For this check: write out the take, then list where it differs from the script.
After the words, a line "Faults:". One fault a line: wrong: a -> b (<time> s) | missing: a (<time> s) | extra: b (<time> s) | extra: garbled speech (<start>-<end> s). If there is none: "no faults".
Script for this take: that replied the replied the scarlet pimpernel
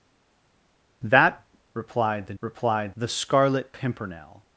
that replied the replied the scarlet pimpernel
Faults:
no faults